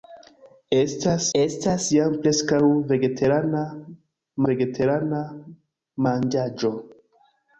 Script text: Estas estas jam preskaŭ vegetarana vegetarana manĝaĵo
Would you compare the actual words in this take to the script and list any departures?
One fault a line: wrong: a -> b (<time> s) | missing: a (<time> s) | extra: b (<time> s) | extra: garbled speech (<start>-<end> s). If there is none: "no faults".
no faults